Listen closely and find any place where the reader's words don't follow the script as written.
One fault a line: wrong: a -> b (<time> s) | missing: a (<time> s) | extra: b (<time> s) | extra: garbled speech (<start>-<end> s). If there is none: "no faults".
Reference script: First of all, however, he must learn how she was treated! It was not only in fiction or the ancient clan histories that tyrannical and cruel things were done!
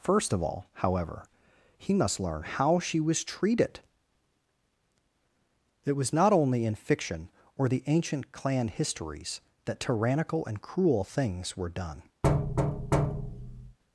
no faults